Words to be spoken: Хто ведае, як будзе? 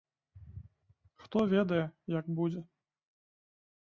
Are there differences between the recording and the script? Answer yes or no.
no